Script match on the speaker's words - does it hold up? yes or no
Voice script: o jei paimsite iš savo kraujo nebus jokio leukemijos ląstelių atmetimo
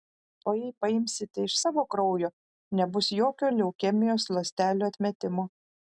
yes